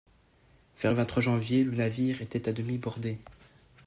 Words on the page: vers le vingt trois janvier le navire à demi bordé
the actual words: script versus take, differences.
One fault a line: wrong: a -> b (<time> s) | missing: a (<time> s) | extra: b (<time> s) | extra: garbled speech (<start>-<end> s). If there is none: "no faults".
extra: était (2.2 s)